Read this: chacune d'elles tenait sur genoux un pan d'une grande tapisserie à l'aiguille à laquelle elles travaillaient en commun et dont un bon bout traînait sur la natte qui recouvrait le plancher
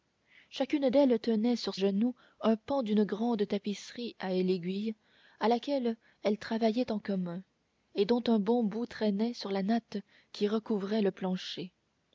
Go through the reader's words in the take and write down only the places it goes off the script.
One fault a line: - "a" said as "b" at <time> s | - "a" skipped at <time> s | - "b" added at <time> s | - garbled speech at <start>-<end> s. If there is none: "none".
none